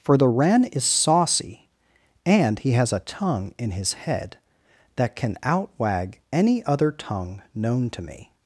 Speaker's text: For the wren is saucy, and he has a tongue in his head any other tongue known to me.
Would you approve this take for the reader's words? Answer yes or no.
no